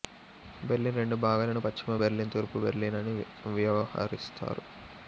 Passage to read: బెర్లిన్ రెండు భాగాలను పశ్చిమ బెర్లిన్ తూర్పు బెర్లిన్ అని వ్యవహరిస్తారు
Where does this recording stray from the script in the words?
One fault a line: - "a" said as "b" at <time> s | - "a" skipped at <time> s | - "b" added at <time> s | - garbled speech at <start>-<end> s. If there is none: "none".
none